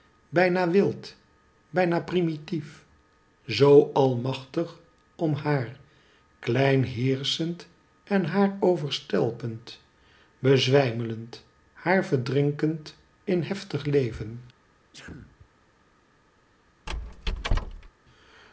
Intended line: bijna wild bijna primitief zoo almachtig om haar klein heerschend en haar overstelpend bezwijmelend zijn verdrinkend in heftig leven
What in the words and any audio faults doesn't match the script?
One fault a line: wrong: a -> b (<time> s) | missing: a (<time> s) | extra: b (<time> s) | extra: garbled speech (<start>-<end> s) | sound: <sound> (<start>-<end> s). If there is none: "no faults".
wrong: zijn -> haar (11.7 s)
sound: sneeze (14.9-15.5 s)
sound: squeak (16.9-17.9 s)